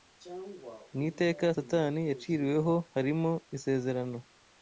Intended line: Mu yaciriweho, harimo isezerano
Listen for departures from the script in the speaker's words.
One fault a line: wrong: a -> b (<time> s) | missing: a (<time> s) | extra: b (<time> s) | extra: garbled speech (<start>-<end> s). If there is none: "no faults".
extra: iteka Satani (1.1 s)